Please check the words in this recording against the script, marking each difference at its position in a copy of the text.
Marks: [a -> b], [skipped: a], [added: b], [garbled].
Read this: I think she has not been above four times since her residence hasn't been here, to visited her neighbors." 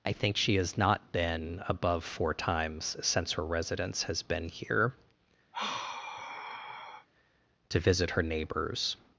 I think she has not been above four times since her residence [hasn't -> has] been here, to [visited -> visit] her neighbors."